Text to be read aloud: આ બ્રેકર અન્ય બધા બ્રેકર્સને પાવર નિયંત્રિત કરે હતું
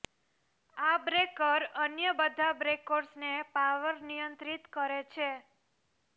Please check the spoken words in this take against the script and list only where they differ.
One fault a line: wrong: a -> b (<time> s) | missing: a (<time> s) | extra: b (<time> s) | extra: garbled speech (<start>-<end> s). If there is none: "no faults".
wrong: હતું -> છે (5.1 s)